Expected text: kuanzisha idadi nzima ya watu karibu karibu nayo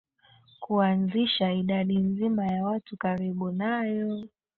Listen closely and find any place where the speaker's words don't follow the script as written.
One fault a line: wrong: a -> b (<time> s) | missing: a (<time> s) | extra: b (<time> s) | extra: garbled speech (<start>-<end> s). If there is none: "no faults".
missing: karibu (3.5 s)